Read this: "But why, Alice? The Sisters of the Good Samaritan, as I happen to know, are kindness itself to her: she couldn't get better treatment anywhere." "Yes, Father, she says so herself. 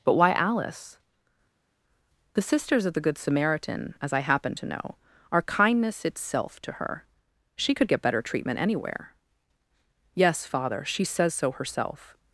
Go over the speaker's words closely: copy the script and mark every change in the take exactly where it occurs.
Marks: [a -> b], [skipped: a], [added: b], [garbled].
"But why, Alice? The Sisters of the Good Samaritan, as I happen to know, are kindness itself to her: she [couldn't -> could] get better treatment anywhere." "Yes, Father, she says so herself.